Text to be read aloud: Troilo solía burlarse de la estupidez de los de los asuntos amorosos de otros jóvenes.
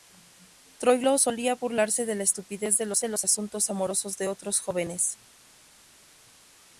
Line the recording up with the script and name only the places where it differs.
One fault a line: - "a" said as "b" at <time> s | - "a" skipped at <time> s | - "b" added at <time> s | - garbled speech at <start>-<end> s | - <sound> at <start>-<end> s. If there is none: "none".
none